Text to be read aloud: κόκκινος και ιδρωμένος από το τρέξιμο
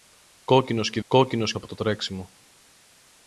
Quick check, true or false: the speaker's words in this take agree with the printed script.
false